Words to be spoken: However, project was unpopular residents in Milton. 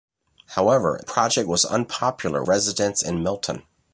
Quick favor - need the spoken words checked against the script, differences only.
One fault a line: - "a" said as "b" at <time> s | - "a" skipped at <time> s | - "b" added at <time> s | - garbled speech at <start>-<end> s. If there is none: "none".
none